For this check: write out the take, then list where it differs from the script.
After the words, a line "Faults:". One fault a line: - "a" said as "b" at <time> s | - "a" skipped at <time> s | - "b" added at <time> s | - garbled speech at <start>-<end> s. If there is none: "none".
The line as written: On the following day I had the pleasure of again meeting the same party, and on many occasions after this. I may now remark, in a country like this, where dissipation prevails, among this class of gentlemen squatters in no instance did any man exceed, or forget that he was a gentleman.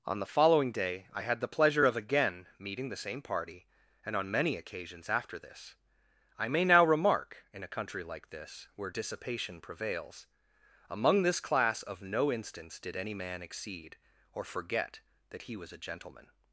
On the following day I had the pleasure of again meeting the same party, and on many occasions after this. I may now remark, in a country like this, where dissipation prevails, among this class of no instance did any man exceed, or forget that he was a gentleman.
Faults:
- "gentlemen squatters in" skipped at 12.0 s